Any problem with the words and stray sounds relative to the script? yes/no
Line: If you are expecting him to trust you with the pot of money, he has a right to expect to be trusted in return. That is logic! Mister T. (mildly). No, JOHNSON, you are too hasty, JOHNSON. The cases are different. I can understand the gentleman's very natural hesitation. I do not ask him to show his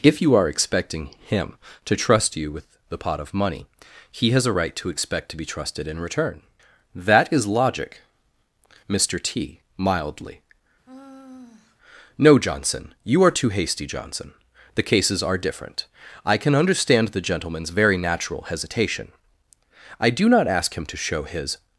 yes